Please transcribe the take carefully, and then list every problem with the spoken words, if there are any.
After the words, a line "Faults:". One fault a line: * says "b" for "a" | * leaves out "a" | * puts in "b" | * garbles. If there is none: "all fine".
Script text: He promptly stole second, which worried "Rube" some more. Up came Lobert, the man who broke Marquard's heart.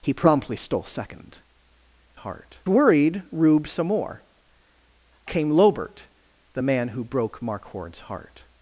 He promptly stole second, heart worried "Rube" some more. Came Lobert, the man who broke Marquard's heart.
Faults:
* says "heart" for "which"
* leaves out "Up"